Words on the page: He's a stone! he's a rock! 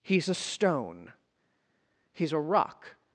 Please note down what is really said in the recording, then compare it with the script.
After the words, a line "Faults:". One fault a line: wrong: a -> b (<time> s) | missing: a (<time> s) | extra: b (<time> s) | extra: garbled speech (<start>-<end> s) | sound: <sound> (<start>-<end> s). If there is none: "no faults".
He's a stone! he's a rock!
Faults:
no faults